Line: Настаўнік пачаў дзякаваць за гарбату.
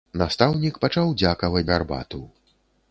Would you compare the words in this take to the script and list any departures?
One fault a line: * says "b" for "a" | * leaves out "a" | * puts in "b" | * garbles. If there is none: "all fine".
* leaves out "за"